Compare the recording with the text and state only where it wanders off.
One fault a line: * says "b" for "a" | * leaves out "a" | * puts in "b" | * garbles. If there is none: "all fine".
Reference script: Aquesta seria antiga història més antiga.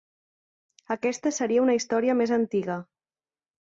* says "una" for "antiga"